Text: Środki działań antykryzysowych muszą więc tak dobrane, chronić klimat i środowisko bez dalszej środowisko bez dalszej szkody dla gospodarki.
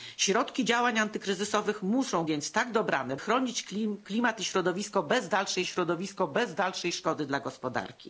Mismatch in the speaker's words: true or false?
false